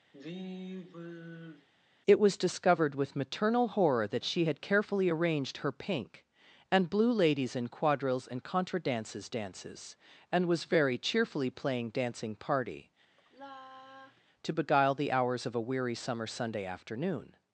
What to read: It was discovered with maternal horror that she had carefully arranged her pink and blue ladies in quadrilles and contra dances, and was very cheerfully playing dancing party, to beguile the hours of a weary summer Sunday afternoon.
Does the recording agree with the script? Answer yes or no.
no